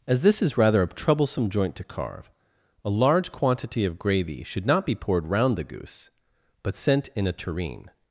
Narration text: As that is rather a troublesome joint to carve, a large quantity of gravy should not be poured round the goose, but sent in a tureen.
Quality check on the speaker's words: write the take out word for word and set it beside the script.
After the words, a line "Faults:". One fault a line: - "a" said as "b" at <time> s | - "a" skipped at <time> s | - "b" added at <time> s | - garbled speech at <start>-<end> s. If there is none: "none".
As this is rather a troublesome joint to carve, a large quantity of gravy should not be poured round the goose, but sent in a tureen.
Faults:
- "that" said as "this" at 0.2 s